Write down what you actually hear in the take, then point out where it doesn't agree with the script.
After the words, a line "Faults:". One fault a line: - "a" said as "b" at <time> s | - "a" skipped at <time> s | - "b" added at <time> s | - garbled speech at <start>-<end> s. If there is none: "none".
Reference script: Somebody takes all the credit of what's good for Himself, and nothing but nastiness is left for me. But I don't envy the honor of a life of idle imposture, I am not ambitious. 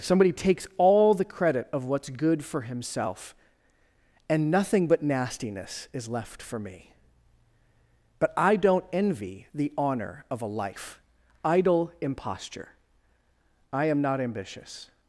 Somebody takes all the credit of what's good for Himself, and nothing but nastiness is left for me. But I don't envy the honor of a life idle imposture, I am not ambitious.
Faults:
- "of" skipped at 11.0 s